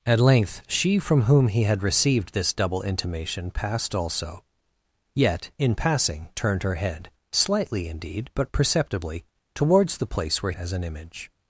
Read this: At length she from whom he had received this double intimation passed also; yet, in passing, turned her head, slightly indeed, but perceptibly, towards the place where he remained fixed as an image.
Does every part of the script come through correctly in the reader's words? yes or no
no